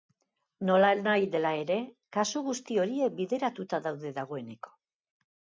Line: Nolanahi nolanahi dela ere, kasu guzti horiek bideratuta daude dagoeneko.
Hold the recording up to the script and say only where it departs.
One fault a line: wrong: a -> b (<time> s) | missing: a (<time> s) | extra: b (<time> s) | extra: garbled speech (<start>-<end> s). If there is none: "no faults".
missing: nolanahi (1.3 s)